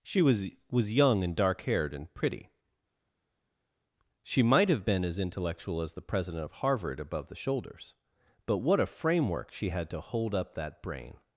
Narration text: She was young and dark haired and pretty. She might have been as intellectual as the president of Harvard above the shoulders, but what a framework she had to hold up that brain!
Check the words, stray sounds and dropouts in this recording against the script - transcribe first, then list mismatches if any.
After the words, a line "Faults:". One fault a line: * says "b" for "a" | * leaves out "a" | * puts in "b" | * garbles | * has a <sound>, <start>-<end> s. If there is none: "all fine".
She was was young and dark haired and pretty. She might have been as intellectual as the president of Harvard above the shoulders, but what a framework she had to hold up that brain!
Faults:
* puts in "was"